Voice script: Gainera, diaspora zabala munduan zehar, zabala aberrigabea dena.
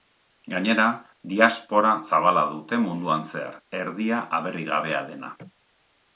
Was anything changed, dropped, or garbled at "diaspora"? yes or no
no